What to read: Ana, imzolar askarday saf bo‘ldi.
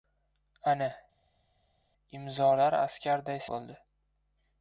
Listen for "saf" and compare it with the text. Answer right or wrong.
wrong